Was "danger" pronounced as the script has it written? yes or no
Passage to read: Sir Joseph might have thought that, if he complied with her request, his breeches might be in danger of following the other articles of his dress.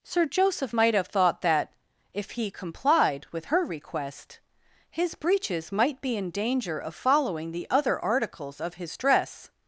yes